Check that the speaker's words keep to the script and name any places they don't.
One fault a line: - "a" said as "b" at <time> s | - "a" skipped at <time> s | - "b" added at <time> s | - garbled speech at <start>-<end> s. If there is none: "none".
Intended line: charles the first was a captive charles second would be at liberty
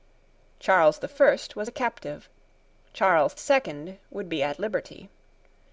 none